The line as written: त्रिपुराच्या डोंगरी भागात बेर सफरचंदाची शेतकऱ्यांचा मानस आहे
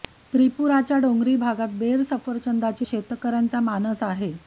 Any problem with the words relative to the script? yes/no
no